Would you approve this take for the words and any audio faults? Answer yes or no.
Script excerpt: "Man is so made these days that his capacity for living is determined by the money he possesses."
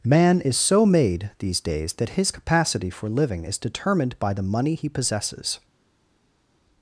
yes